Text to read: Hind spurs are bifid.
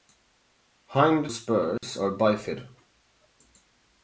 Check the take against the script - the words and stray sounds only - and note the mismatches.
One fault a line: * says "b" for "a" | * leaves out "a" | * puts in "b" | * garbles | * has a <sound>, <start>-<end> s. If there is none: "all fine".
* has a dropout, 1.8-1.8 s